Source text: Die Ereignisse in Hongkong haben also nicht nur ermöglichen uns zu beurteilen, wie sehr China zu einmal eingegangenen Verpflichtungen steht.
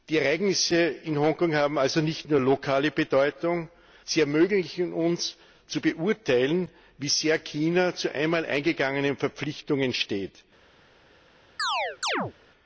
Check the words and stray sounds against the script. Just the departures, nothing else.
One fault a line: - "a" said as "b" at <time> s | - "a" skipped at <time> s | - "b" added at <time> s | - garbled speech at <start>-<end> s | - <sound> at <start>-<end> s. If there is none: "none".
- "lokale Bedeutung sie" added at 2.4 s
- chirp at 11.6-12.3 s